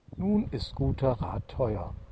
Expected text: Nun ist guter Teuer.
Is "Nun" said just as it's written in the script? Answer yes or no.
yes